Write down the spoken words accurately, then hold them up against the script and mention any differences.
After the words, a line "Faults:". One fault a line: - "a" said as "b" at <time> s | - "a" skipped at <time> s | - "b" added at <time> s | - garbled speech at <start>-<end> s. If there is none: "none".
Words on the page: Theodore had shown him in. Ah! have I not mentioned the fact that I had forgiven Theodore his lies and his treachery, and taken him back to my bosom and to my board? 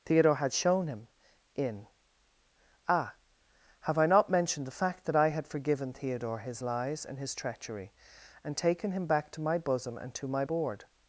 Theodore had shown him in. Ah! have I not mentioned the fact that I had forgiven Theodore his lies and his treachery, and taken him back to my bosom and to my board?
Faults:
none